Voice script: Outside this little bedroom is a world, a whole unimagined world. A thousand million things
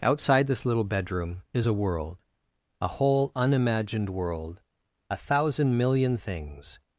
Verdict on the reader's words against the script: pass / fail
pass